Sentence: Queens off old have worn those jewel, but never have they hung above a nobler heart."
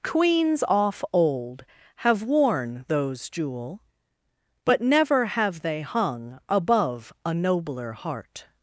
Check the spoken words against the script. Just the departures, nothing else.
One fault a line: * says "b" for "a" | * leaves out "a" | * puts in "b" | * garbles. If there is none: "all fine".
all fine